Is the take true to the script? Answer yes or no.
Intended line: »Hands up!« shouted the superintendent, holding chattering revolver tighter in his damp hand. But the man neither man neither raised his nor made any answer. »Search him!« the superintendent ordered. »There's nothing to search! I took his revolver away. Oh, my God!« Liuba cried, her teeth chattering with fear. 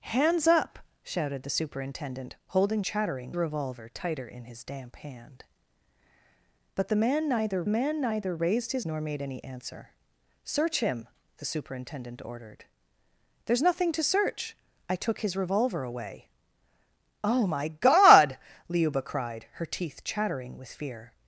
yes